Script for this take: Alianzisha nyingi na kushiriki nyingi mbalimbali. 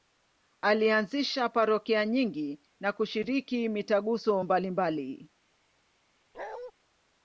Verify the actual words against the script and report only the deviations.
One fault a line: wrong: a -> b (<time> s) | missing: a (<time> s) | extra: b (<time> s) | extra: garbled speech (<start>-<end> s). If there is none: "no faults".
extra: parokia (1.5 s)
wrong: nyingi -> mitaguso (3.7 s)